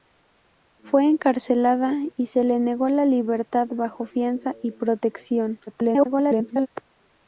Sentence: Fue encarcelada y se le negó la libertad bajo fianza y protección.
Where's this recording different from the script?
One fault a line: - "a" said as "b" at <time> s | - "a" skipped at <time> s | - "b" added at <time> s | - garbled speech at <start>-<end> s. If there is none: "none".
- garbled speech at 5.7-6.7 s